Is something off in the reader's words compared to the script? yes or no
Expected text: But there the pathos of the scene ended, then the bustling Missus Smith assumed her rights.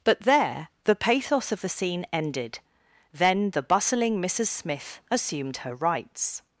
no